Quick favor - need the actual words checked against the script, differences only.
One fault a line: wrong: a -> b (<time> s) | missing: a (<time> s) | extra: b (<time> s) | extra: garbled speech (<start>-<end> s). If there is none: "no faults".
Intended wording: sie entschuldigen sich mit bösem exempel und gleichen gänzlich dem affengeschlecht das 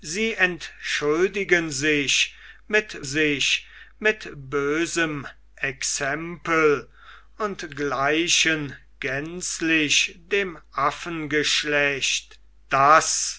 extra: sich mit (3.0 s)